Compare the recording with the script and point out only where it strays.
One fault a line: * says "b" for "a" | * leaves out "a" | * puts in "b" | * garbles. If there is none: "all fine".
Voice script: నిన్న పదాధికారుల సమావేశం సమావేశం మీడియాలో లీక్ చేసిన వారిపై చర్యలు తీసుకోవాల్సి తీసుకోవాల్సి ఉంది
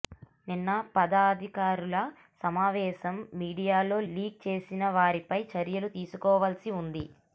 * leaves out "సమావేశం"
* leaves out "తీసుకోవాల్సి"